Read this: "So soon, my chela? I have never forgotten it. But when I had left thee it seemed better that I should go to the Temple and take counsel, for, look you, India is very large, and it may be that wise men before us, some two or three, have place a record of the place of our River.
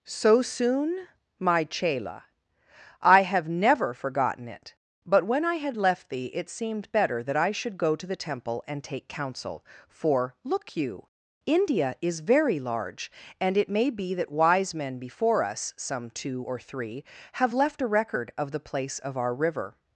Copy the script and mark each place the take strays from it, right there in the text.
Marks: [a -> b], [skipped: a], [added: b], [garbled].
"So soon, my chela? I have never forgotten it. But when I had left thee it seemed better that I should go to the Temple and take counsel, for, look you, India is very large, and it may be that wise men before us, some two or three, have [place -> left] a record of the place of our River.